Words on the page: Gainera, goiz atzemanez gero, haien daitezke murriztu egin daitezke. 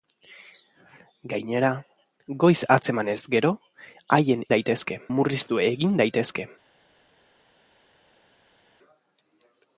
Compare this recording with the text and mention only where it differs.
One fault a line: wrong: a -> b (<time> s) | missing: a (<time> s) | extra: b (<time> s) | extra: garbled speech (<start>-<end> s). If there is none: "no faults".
no faults